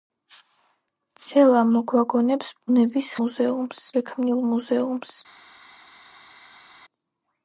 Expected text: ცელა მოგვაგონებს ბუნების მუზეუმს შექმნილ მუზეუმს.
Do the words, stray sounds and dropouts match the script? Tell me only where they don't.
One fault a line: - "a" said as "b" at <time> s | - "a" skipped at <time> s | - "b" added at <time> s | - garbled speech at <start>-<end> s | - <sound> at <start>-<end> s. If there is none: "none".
none